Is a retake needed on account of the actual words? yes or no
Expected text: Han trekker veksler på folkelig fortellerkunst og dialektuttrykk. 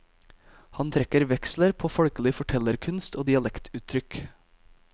no